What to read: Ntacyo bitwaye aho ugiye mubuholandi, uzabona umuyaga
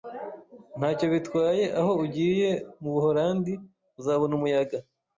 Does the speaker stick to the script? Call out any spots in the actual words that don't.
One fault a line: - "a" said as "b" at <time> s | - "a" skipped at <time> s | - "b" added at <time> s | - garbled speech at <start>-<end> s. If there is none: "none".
none